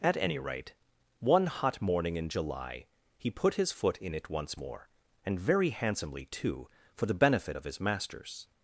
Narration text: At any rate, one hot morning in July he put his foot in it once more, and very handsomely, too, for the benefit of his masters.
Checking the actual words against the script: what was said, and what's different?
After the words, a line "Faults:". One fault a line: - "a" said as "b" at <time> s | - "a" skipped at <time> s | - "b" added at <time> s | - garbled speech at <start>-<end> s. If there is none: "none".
At any rate, one hot morning in July he put his foot in it once more, and very handsomely, too, for the benefit of his masters.
Faults:
none